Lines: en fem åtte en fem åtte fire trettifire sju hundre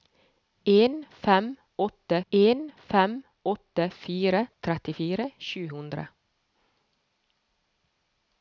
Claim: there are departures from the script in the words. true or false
false